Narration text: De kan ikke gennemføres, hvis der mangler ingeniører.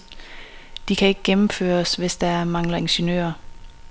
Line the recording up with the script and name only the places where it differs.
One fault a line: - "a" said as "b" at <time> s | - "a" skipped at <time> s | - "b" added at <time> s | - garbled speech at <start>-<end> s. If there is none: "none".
none